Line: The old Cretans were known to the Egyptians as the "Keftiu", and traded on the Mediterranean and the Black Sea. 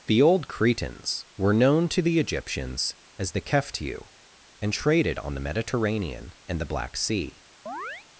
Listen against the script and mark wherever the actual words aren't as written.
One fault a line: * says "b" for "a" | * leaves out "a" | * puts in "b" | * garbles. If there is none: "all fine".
all fine